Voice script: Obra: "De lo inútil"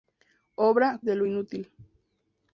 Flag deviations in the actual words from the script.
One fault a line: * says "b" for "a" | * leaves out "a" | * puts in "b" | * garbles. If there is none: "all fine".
all fine